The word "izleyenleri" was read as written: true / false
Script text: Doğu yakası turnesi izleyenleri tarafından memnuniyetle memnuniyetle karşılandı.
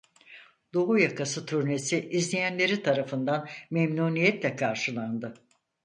true